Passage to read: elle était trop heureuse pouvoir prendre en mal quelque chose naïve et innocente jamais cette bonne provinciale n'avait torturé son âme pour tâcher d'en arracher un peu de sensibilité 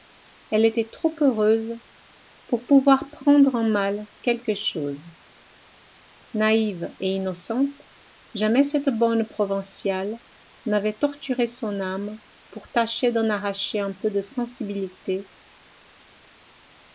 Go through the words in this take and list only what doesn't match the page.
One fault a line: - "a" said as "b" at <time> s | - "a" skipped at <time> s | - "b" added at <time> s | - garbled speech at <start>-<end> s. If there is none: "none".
- "pour" added at 2.5 s